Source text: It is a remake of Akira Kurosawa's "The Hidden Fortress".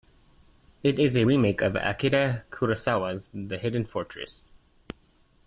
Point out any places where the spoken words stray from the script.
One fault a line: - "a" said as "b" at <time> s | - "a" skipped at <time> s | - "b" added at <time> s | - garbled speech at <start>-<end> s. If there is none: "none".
none